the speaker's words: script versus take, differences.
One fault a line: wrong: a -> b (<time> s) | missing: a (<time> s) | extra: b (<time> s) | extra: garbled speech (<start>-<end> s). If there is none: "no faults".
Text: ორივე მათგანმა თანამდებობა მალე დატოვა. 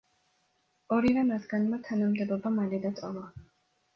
no faults